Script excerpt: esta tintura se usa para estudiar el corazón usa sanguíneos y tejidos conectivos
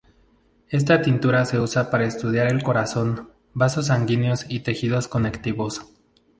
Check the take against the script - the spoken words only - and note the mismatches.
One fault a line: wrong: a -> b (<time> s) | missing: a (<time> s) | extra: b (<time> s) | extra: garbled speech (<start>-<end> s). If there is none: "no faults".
wrong: usa -> vasos (3.5 s)